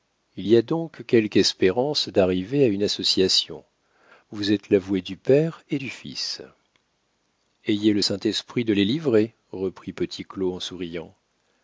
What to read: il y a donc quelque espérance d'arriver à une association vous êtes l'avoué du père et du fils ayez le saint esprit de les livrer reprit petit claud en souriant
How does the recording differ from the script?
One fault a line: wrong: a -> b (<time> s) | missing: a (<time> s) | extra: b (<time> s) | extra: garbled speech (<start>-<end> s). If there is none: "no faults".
no faults